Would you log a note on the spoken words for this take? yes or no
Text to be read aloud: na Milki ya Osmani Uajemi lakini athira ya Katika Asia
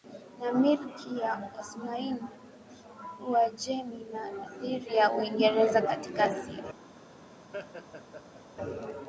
yes